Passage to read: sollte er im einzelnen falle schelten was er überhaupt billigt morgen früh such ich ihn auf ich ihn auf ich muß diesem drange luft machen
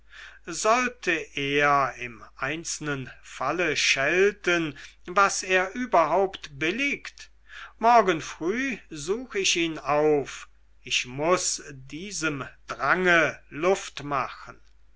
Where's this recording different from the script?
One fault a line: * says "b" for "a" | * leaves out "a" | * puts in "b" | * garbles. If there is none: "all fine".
* leaves out "ihn auf ich"